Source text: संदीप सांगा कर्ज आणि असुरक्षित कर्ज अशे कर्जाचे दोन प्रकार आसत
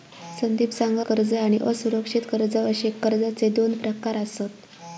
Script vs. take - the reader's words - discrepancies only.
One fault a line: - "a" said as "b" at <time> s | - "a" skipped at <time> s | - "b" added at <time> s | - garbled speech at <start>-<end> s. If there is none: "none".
none